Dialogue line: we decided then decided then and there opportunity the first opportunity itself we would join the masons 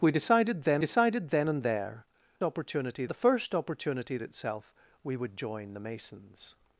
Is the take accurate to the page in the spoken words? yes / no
yes